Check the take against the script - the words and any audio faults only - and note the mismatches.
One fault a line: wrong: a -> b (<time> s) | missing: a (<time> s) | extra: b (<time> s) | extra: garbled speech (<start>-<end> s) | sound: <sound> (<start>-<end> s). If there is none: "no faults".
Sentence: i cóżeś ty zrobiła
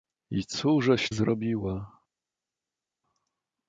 missing: ty (1.1 s)